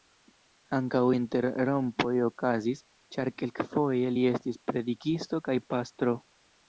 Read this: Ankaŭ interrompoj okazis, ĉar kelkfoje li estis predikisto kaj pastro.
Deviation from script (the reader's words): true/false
false